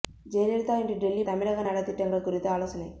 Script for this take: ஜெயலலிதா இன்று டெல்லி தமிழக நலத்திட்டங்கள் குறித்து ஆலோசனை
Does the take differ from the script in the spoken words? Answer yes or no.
no